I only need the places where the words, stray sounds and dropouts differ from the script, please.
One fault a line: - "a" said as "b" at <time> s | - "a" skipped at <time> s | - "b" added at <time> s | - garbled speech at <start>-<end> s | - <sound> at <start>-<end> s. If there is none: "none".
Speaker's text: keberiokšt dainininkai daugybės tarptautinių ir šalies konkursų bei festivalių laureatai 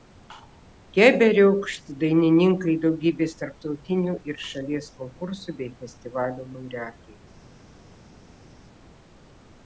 none